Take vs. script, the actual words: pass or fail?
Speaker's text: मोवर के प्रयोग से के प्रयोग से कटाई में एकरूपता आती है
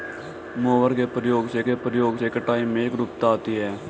pass